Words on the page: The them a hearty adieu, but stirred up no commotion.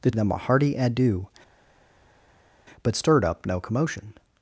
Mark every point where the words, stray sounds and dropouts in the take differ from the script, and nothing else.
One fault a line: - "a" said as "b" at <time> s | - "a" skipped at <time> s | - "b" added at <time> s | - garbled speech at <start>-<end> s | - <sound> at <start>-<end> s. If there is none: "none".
none